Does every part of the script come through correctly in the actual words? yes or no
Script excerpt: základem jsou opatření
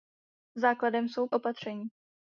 yes